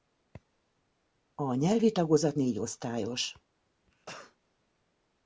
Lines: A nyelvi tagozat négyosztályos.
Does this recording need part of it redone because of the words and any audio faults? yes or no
yes